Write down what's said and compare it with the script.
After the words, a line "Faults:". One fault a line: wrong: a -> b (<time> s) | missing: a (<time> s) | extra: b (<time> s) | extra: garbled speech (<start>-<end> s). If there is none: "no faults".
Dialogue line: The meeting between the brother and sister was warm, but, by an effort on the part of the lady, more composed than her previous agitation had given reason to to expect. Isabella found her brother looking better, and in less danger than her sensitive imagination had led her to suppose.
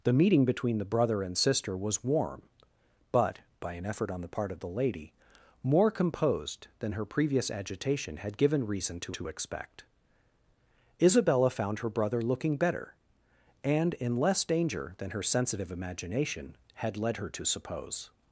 The meeting between the brother and sister was warm, but, by an effort on the part of the lady, more composed than her previous agitation had given reason to to expect. Isabella found her brother looking better, and in less danger than her sensitive imagination had led her to suppose.
Faults:
no faults